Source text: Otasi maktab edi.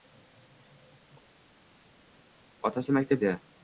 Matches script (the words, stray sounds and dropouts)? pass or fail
pass